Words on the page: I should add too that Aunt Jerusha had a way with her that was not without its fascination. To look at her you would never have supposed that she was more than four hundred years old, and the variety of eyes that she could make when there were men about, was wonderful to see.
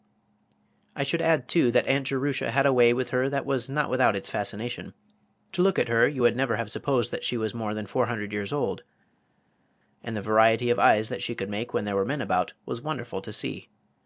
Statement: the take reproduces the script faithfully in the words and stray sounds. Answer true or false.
true